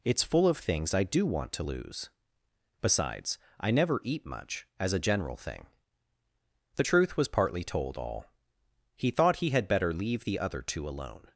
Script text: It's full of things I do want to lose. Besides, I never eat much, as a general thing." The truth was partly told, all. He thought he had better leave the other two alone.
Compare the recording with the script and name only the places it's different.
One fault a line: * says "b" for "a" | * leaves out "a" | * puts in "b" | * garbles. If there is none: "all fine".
all fine